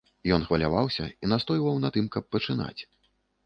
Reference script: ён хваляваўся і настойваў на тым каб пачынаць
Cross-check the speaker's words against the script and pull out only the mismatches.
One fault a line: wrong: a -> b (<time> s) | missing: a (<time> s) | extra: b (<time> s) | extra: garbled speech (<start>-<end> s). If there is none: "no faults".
no faults